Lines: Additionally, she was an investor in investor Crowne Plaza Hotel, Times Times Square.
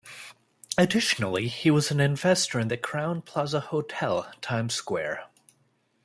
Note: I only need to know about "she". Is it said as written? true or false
false